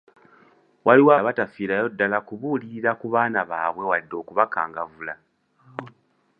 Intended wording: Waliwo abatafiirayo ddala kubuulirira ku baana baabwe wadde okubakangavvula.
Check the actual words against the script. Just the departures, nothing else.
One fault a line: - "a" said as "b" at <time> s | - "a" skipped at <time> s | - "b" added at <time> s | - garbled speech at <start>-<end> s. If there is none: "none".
none